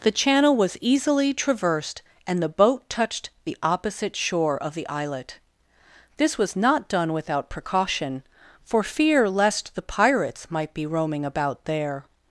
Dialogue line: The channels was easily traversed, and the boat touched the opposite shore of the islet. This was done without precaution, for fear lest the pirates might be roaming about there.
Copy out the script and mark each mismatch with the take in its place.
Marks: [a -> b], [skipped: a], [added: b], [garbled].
The [channels -> channel] was easily traversed, and the boat touched the opposite shore of the islet. This was [added: not] done without precaution, for fear lest the pirates might be roaming about there.